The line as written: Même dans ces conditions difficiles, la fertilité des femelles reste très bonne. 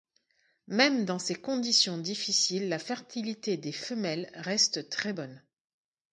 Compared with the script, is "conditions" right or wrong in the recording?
right